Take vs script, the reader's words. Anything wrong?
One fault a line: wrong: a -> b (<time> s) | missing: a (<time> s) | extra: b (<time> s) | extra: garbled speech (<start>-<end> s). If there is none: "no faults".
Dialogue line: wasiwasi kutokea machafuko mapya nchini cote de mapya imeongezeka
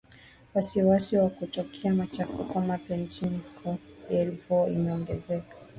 extra: wa (1.2 s)
wrong: mapya -> voire (4.3 s)